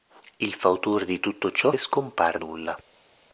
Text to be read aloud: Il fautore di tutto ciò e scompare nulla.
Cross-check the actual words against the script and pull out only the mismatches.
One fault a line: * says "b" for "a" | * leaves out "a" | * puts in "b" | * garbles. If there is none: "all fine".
all fine